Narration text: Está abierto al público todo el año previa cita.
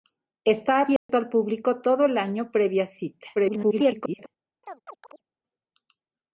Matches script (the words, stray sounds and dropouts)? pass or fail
fail